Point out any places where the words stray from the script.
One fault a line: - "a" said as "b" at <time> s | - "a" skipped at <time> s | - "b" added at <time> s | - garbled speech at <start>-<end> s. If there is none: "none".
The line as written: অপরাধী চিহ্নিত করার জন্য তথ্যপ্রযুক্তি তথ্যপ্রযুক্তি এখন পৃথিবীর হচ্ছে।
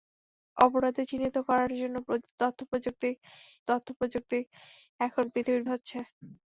none